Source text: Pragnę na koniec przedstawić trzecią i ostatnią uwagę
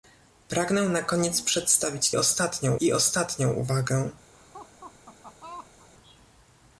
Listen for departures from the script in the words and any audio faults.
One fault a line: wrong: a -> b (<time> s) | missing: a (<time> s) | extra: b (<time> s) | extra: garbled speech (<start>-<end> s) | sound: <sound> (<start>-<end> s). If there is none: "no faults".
wrong: trzecią -> ostatnią (2.2 s)
sound: laugh (4.3-5.9 s)